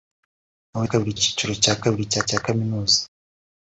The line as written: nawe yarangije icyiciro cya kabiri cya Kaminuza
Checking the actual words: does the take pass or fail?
fail